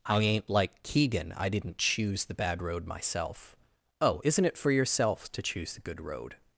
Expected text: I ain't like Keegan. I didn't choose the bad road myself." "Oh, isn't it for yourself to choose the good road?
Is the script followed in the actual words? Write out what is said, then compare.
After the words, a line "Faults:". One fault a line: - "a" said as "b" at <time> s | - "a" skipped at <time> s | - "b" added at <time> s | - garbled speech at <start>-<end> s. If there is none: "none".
I ain't like Keegan. I didn't choose the bad road myself." "Oh, isn't it for yourself to choose the good road?
Faults:
none